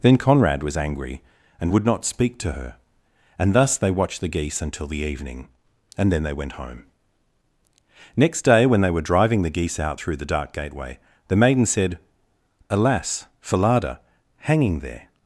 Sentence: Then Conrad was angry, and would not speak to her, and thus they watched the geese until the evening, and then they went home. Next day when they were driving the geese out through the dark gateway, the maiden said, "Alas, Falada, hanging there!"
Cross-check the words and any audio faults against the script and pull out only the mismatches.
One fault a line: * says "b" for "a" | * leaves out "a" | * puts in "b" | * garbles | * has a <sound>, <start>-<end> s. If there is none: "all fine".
all fine